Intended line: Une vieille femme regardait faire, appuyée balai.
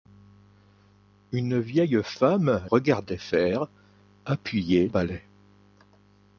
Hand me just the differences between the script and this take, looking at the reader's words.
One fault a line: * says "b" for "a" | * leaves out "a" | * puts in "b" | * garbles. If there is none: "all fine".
all fine